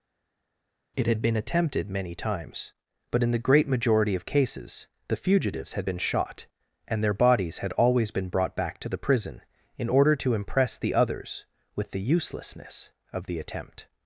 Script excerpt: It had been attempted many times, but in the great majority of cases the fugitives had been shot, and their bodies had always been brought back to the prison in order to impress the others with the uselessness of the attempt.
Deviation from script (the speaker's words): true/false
false